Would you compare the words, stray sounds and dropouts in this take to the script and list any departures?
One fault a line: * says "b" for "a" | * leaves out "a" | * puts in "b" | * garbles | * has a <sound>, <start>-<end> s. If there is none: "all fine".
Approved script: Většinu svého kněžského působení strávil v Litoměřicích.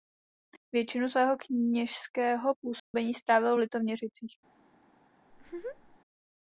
* has a dropout, 2.8-2.9 s
* has a laugh, 5.3-6.0 s